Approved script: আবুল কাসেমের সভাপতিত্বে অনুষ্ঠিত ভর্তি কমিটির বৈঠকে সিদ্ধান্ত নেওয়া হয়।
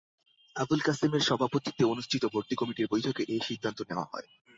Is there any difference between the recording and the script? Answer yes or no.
yes